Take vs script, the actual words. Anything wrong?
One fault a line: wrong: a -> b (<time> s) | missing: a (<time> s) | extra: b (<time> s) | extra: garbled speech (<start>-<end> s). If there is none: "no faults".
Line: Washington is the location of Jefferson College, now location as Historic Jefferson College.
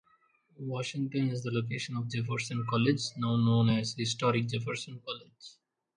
wrong: location -> known (3.4 s)